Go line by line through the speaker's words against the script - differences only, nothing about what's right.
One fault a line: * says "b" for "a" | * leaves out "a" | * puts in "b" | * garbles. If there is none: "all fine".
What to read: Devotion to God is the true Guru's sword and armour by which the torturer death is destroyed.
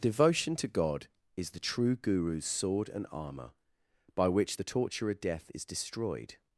all fine